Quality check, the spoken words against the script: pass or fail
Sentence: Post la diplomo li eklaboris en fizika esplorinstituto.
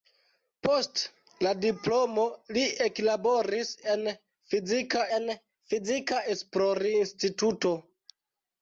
fail